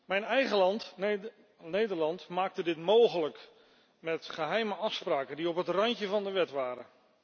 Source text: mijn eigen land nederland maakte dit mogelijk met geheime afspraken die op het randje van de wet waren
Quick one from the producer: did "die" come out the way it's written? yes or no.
yes